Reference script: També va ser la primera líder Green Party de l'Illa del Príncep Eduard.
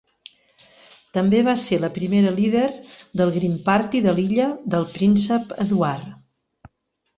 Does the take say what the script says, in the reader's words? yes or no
no